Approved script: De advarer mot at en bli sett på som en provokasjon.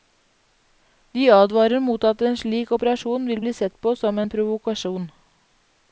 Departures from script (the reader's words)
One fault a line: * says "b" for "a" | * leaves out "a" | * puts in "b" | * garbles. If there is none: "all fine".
* puts in "slik operasjon vil"